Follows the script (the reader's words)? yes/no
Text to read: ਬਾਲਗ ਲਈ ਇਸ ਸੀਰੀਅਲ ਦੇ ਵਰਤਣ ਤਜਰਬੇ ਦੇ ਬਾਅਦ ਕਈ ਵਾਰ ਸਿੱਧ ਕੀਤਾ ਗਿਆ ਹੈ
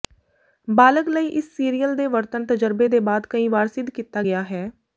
yes